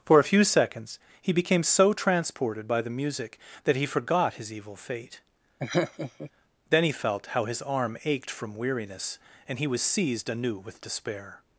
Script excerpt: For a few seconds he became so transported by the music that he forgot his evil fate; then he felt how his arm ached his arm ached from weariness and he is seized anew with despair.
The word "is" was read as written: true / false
false